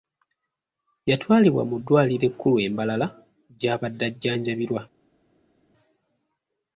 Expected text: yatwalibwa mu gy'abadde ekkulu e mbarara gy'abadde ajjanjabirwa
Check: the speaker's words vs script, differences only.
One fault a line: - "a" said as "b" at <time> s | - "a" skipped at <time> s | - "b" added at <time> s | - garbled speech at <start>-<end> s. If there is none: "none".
- "gy'abadde" said as "ddwaliro" at 1.8 s